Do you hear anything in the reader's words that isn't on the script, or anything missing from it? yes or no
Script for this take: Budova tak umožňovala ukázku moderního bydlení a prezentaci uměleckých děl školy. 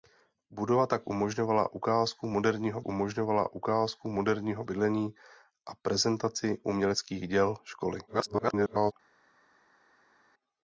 yes